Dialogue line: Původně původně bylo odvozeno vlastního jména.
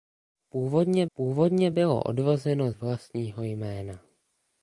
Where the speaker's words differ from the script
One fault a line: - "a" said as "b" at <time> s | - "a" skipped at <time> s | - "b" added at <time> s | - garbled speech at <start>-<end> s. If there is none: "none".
none